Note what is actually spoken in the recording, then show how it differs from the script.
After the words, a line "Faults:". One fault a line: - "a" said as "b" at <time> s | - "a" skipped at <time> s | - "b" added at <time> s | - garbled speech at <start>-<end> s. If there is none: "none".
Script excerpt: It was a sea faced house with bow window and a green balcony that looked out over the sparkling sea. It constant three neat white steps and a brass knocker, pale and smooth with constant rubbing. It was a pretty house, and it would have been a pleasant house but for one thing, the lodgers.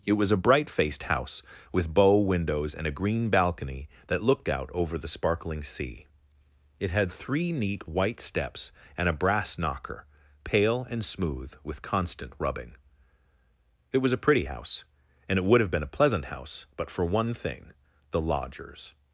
It was a bright faced house with bow windows and a green balcony that looked out over the sparkling sea. It had three neat white steps and a brass knocker, pale and smooth with constant rubbing. It was a pretty house, and it would have been a pleasant house but for one thing, the lodgers.
Faults:
- "sea" said as "bright" at 0.4 s
- "window" said as "windows" at 2.2 s
- "constant" said as "had" at 6.9 s